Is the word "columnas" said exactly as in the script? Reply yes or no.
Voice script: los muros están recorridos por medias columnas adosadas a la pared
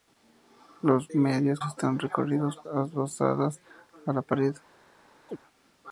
no